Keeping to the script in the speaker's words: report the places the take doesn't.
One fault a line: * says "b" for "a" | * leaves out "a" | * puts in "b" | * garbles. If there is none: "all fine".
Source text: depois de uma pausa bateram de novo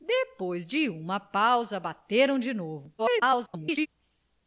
* garbles